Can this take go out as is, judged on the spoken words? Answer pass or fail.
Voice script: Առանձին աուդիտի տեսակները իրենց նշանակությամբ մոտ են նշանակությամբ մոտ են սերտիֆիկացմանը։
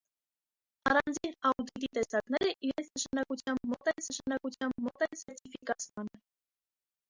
pass